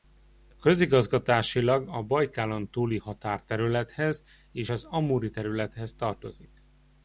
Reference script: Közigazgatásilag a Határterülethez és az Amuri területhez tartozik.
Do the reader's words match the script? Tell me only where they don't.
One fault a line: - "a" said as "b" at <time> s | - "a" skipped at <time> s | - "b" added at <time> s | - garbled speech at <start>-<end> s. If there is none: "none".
- "Bajkálontúli" added at 2.0 s